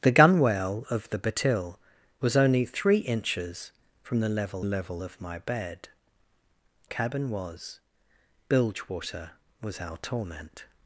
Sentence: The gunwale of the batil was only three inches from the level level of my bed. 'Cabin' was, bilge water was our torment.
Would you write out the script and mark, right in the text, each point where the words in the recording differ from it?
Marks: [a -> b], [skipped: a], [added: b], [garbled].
The gunwale of the batil was only three inches from the level level of my bed. 'Cabin' was, bilge water was our torment.